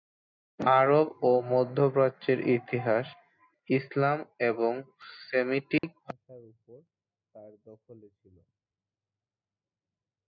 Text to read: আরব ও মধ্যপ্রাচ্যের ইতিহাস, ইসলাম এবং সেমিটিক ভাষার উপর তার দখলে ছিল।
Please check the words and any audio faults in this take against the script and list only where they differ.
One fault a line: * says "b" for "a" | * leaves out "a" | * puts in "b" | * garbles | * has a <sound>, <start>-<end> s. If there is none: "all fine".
* has a dropout, 5.8-5.8 s